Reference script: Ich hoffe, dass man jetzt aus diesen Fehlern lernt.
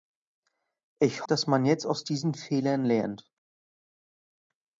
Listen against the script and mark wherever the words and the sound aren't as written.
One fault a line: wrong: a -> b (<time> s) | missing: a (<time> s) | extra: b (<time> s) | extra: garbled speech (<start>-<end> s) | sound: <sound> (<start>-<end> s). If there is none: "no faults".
missing: hoffe (1.3 s)